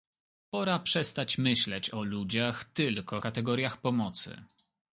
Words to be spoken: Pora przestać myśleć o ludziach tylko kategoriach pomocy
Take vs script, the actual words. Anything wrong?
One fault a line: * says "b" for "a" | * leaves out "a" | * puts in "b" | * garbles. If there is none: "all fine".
all fine